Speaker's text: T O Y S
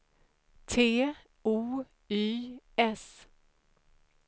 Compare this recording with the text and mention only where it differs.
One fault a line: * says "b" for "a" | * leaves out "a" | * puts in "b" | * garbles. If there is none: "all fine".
all fine